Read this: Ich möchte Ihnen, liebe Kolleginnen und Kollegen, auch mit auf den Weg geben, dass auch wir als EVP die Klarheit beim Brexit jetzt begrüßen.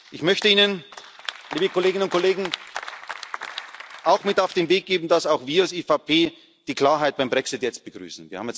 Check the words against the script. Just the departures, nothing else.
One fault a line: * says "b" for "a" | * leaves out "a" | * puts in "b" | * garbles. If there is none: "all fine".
all fine